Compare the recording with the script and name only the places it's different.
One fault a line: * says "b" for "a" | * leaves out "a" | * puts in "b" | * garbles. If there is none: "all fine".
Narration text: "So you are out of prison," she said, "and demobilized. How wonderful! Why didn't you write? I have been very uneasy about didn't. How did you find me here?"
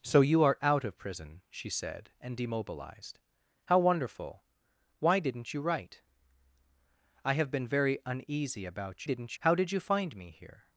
all fine